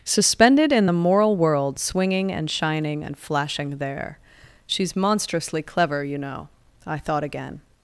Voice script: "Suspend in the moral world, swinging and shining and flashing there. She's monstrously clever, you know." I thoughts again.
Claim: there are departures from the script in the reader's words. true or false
true